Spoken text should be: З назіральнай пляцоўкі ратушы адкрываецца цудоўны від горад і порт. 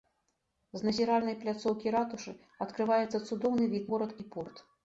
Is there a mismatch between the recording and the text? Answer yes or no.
no